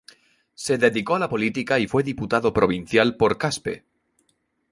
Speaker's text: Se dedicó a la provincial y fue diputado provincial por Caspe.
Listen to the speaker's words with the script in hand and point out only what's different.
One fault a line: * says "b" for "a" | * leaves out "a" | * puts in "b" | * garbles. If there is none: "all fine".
* says "política" for "provincial"